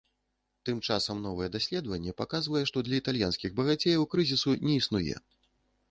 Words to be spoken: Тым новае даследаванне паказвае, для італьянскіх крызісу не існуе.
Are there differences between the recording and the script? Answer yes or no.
yes